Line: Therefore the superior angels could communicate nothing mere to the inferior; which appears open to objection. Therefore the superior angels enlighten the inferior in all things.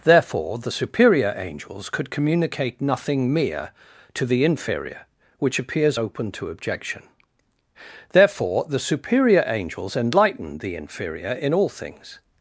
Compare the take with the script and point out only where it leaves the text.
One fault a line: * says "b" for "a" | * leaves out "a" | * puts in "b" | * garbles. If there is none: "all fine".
all fine